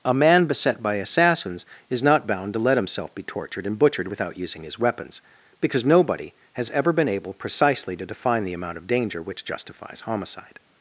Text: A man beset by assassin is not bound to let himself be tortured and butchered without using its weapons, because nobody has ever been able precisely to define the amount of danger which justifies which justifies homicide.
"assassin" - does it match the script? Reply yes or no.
no